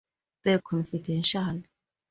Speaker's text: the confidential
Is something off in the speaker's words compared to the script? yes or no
no